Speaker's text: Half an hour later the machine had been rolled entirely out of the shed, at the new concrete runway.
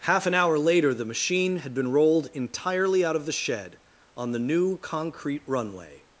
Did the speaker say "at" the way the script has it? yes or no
no